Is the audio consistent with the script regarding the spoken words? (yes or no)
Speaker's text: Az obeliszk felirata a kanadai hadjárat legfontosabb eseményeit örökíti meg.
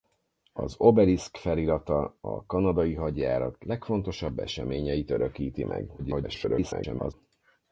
no